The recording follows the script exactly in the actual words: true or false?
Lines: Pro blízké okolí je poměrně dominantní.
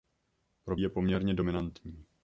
false